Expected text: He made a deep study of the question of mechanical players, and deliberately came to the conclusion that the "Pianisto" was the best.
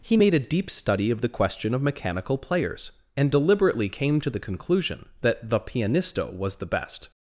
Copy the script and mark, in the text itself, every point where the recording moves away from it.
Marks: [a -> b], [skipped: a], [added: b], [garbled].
He made a deep study of the question of mechanical players, and deliberately came to the conclusion that the "Pianisto" was the best.